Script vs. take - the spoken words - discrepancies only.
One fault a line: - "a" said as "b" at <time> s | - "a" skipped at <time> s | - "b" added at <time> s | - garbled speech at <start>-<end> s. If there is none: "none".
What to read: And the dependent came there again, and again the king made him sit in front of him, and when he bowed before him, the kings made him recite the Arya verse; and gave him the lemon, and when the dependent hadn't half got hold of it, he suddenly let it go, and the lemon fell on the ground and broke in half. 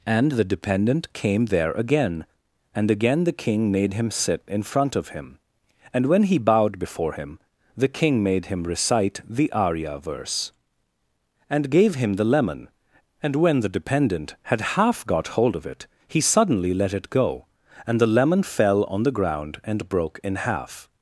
- "kings" said as "king" at 7.9 s
- "hadn't" said as "had" at 14.4 s